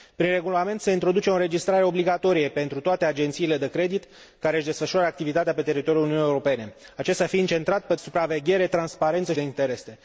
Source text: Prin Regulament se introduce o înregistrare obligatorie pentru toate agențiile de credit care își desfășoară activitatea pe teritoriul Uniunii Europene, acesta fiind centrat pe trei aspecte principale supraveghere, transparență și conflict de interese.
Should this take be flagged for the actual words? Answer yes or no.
yes